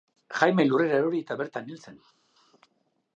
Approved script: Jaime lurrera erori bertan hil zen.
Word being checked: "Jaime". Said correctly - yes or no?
yes